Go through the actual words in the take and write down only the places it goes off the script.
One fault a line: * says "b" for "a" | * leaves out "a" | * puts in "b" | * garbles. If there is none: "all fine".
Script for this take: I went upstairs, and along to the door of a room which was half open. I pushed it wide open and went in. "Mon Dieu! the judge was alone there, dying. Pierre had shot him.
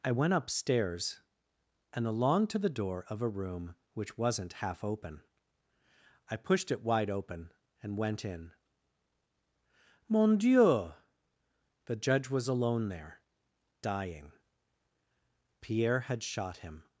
* says "wasn't" for "was"